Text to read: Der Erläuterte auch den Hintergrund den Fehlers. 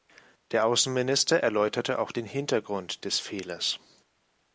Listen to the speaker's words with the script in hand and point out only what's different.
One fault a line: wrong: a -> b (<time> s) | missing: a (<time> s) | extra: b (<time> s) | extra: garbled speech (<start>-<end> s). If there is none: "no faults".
extra: Außenminister (0.7 s)
wrong: den -> des (3.0 s)